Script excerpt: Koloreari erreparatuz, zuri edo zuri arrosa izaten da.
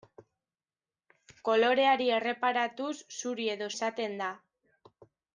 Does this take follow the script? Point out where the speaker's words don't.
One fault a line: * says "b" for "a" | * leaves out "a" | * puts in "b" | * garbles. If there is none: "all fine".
* leaves out "zuri arrosa"